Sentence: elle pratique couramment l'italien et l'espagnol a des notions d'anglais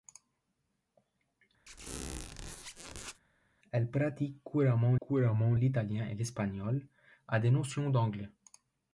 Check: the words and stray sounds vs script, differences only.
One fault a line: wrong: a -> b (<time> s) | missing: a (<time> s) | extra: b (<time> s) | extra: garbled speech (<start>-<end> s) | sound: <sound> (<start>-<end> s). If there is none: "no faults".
sound: squeak (1.7-3.2 s)
extra: couramment (5.0 s)